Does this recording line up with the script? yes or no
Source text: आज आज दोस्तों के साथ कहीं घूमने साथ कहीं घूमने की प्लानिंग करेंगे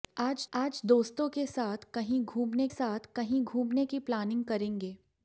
yes